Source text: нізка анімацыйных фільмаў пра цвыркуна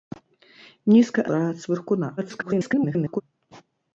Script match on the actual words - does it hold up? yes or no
no